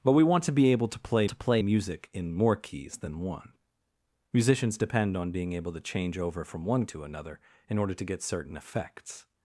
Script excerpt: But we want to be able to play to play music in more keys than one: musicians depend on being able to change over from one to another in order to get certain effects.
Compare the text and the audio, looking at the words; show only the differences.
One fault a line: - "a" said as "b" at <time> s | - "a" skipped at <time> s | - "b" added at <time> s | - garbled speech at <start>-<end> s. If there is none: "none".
none